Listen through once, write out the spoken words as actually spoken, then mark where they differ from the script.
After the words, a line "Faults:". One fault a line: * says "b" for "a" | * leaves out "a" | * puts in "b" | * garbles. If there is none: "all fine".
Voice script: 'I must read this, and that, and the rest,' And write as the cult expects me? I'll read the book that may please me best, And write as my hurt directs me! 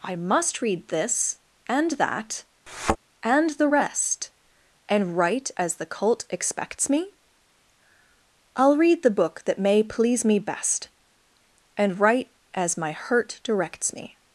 'I must read this, and that, and the rest,' And write as the cult expects me? I'll read the book that may please me best, And write as my hurt directs me!
Faults:
all fine